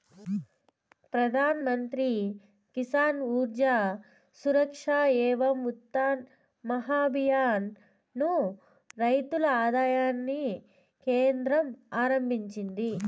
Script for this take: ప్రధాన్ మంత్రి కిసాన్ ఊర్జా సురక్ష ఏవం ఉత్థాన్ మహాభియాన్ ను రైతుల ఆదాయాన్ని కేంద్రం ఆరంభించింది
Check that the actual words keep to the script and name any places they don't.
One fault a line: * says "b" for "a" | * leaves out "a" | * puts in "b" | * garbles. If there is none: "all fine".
all fine